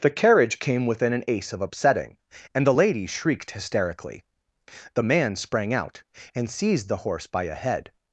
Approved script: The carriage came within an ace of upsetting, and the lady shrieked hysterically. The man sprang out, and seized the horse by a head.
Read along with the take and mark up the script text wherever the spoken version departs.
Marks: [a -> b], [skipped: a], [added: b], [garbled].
The carriage came within an ace of upsetting, and the lady shrieked hysterically. The man sprang out, and seized the horse by a head.